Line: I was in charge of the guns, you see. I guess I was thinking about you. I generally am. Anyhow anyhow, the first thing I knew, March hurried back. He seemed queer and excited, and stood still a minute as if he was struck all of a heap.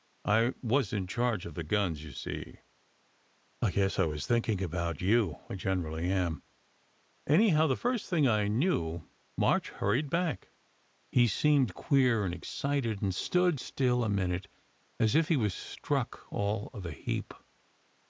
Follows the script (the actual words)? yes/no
no